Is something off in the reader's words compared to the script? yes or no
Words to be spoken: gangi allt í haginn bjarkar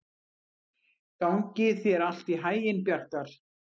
yes